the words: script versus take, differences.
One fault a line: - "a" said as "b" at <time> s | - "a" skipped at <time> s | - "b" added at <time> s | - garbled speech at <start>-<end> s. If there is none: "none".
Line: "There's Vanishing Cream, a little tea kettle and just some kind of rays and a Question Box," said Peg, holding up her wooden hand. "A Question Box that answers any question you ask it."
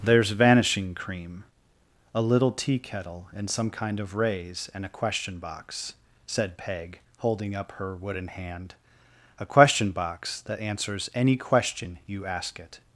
- "just" skipped at 3.5 s